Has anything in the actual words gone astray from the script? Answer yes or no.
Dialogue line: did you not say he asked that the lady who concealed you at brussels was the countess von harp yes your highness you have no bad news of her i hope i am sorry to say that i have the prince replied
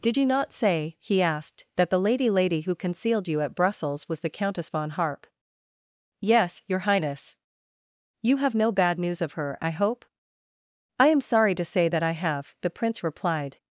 yes